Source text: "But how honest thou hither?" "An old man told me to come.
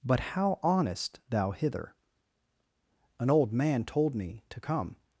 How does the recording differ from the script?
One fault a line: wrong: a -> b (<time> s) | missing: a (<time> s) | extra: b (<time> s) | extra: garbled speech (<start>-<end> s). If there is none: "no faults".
no faults